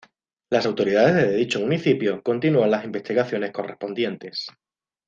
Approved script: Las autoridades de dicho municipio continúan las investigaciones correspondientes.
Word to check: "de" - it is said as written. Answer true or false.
true